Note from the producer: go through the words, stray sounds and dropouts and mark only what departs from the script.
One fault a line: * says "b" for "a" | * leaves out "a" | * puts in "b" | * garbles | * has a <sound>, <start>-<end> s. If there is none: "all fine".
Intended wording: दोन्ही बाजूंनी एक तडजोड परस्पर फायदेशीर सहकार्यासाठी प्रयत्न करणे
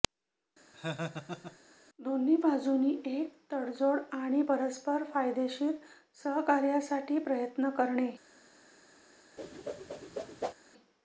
* has a laugh, 0.7-1.6 s
* puts in "आणि"
* has a whoosh, 9.4-10.5 s